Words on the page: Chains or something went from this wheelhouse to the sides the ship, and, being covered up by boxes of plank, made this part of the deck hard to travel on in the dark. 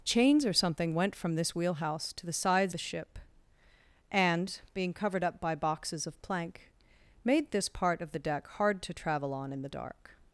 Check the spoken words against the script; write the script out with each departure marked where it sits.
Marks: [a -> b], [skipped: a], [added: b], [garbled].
Chains or something went from this wheelhouse to the sides the ship, and, being covered up by boxes of plank, made this part of the deck hard to travel on in the dark.